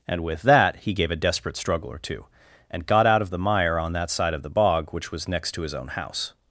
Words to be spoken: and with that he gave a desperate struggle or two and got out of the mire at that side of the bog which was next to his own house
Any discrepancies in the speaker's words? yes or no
yes